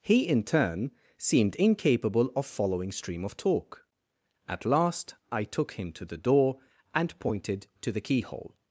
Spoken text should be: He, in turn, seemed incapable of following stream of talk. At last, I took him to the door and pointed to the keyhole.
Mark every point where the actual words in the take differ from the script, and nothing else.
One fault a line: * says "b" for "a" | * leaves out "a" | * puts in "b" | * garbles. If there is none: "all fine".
all fine